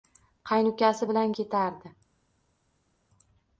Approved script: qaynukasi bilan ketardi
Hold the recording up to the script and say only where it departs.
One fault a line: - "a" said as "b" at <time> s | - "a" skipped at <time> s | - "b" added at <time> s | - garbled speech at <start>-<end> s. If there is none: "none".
none